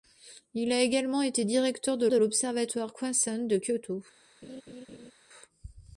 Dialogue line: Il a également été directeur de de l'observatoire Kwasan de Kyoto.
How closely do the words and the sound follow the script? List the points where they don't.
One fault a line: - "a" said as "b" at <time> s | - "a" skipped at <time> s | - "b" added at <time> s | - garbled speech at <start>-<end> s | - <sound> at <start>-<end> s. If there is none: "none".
- laugh at 4.4-5.1 s